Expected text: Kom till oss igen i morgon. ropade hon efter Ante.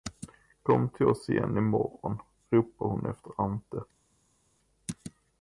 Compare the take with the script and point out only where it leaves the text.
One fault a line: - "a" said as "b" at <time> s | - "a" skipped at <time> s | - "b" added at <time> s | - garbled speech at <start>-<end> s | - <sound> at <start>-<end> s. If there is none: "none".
none